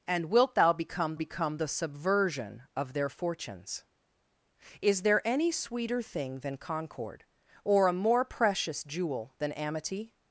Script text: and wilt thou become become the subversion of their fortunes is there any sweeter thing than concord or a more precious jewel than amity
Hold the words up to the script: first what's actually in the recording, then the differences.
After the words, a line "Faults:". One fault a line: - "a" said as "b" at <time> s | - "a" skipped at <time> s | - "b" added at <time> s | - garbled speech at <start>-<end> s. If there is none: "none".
and wilt thou become become the subversion of their fortunes is there any sweeter thing than concord or a more precious jewel than amity
Faults:
none